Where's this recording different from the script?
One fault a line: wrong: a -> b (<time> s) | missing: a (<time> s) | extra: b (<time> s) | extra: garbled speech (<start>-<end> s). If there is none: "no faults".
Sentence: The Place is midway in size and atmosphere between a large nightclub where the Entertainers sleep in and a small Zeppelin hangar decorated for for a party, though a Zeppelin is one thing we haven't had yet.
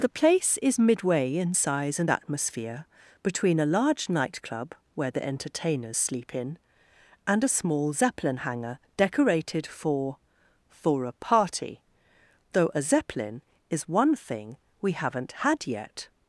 no faults